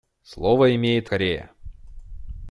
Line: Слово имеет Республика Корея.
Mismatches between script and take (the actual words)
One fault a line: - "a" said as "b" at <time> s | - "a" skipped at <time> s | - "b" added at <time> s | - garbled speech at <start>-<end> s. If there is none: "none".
- "Республика" skipped at 1.1 s